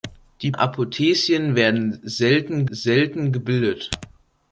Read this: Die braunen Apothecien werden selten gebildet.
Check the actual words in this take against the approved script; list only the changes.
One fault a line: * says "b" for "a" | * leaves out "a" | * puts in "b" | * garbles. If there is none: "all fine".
* leaves out "braunen"
* puts in "selten"